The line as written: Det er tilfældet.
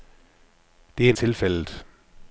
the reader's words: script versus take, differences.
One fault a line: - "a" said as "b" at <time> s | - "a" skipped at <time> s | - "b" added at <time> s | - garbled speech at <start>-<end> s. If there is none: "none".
none